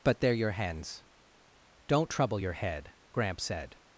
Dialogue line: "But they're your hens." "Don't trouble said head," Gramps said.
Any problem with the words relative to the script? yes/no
yes